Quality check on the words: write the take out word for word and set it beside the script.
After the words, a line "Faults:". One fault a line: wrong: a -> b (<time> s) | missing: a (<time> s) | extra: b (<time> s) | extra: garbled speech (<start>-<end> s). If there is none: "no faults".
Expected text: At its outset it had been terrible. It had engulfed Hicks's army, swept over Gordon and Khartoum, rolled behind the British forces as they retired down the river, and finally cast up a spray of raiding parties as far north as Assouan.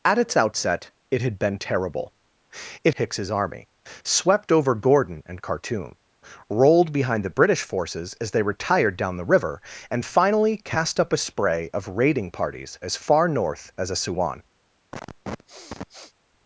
At its outset it had been terrible. It Hicks's army, swept over Gordon and Khartoum, rolled behind the British forces as they retired down the river, and finally cast up a spray of raiding parties as far north as Assouan.
Faults:
missing: had engulfed (3.0 s)